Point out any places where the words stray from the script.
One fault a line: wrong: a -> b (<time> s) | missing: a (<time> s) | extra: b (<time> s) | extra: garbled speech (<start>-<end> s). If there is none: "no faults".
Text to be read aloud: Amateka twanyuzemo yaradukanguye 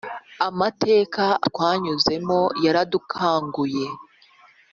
no faults